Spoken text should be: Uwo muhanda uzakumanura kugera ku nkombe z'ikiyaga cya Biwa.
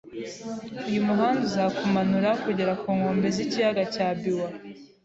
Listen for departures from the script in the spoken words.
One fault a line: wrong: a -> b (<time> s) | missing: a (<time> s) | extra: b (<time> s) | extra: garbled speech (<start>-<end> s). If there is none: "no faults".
wrong: Uwo -> Uyu (0.9 s)